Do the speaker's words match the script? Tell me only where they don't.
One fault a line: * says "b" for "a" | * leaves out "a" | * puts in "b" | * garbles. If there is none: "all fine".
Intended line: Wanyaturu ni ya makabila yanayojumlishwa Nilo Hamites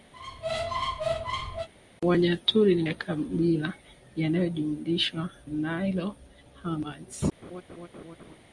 all fine